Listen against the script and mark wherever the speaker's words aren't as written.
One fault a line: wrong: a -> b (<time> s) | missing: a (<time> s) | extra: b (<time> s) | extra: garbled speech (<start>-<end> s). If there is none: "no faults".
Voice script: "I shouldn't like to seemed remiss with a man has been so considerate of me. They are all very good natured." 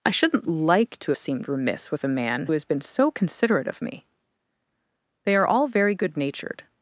no faults